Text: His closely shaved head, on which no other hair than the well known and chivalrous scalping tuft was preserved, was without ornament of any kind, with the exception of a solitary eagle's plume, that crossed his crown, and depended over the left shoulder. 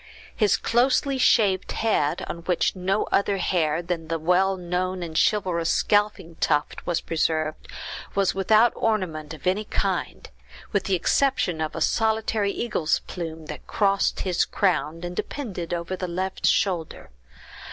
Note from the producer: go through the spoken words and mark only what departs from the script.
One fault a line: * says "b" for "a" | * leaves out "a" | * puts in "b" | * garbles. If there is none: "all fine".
all fine